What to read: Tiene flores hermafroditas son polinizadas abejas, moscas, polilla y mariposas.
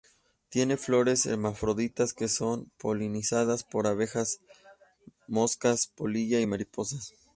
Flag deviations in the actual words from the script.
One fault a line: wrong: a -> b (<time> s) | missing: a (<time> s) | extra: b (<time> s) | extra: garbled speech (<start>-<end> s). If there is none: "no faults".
extra: que (2.1 s)
extra: por (3.6 s)